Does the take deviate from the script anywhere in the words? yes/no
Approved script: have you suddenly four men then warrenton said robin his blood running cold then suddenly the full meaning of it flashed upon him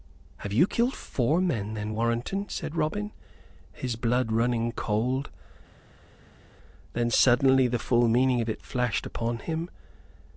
yes